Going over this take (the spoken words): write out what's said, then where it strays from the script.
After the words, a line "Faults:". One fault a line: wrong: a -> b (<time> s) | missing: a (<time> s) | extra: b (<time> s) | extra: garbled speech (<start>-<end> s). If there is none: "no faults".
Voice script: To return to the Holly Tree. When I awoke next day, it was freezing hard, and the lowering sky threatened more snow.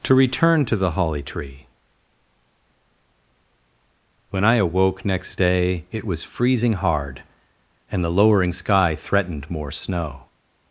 To return to the Holly Tree. When I awoke next day, it was freezing hard, and the lowering sky threatened more snow.
Faults:
no faults